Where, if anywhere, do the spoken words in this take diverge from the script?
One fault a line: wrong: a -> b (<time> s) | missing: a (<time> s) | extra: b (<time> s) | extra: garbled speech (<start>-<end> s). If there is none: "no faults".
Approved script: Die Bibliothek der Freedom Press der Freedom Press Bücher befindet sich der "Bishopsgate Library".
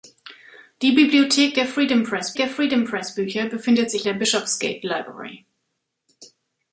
no faults